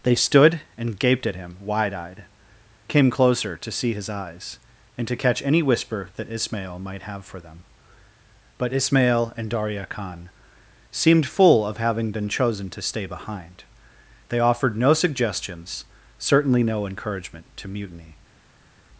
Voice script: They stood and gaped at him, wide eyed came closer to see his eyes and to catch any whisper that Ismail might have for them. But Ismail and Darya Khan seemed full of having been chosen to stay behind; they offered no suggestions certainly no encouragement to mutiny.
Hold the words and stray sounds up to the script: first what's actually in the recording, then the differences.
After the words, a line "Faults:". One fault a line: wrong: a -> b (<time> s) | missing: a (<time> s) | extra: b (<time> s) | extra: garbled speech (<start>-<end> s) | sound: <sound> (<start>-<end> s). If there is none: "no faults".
They stood and gaped at him, wide eyed came closer to see his eyes and to catch any whisper that Ismail might have for them. But Ismail and Darya Khan seemed full of having been chosen to stay behind; they offered no suggestions certainly no encouragement to mutiny.
Faults:
no faults